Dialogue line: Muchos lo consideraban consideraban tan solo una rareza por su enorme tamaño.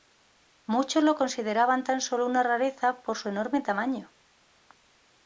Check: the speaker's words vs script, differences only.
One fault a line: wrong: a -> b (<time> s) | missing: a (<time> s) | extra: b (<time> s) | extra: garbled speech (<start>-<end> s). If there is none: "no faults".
missing: consideraban (1.8 s)